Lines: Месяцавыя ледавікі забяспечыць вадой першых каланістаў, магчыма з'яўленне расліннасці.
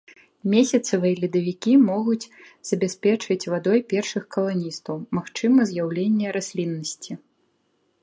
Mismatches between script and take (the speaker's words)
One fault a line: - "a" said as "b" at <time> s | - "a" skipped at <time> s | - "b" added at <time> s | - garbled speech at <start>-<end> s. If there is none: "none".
- "могуць" added at 1.9 s